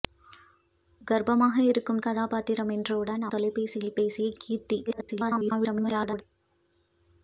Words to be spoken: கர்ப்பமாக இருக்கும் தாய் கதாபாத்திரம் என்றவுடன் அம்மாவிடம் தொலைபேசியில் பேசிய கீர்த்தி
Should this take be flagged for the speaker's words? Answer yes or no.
yes